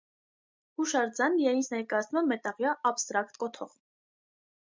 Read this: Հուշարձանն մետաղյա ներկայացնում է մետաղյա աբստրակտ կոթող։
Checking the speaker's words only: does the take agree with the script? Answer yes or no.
no